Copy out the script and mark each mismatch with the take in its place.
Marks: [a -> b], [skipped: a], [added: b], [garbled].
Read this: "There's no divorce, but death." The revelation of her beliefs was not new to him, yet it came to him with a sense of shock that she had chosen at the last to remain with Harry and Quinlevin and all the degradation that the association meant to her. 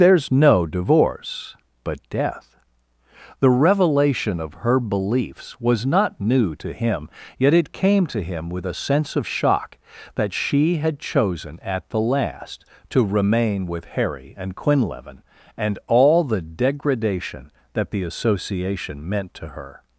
"There's no divorce, but death." The revelation of her beliefs was not new to him, yet it came to him with a sense of shock that she had chosen at the last to remain with Harry and Quinlevin and all the degradation that the association meant to her.